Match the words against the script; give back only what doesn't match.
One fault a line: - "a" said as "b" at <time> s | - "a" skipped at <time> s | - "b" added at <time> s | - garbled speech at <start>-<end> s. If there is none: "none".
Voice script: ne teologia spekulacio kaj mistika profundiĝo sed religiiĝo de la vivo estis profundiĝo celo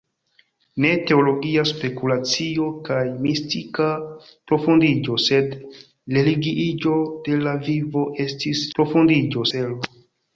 none